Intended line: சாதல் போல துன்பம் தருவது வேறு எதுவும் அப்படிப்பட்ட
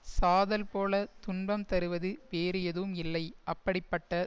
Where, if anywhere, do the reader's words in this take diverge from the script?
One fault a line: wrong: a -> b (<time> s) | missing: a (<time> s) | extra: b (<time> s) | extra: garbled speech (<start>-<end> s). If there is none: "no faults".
extra: இல்லை (3.0 s)